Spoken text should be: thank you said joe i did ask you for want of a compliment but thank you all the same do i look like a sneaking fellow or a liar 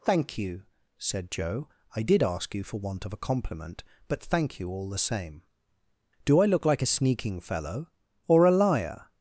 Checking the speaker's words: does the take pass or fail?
pass